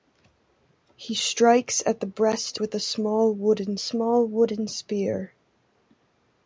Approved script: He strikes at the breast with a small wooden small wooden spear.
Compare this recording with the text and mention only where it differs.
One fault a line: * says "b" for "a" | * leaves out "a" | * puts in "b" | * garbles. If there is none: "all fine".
all fine